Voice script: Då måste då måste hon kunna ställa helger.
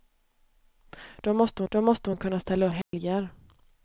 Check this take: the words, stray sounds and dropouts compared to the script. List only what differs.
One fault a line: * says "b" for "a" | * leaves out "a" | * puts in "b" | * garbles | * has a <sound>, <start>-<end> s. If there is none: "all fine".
* has a dropout, 2.8-2.9 s